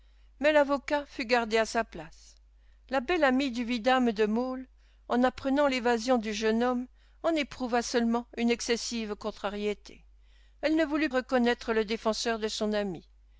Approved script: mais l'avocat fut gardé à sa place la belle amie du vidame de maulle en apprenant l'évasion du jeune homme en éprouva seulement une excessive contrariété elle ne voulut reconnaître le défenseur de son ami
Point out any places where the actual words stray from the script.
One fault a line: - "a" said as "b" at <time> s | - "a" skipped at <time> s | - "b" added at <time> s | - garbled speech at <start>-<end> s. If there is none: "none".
none